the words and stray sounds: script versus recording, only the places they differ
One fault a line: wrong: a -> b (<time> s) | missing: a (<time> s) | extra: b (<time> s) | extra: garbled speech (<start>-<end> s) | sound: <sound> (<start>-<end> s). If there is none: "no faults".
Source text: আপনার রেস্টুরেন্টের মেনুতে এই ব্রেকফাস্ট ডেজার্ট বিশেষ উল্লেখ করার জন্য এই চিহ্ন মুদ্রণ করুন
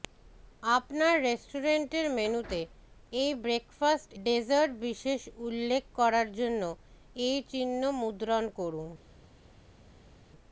no faults